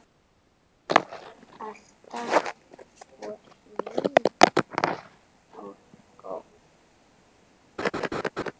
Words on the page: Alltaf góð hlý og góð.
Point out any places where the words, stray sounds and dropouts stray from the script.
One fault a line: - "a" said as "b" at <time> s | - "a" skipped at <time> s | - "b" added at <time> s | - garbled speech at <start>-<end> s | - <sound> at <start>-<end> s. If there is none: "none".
- "góð" said as "svo" at 3.0 s
- laugh at 7.8-8.5 s